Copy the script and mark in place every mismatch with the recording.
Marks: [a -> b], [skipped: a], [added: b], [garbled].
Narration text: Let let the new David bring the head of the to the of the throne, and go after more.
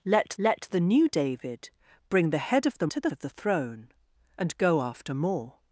Let let the new David bring the head of the to the of the throne, and go after more.